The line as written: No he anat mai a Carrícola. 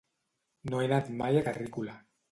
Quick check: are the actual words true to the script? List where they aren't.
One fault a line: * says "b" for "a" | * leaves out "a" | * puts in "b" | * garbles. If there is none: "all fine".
all fine